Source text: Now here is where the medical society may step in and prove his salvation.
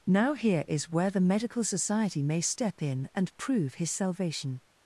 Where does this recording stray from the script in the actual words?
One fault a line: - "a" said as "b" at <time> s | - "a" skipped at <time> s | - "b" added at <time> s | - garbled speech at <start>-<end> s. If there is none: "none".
none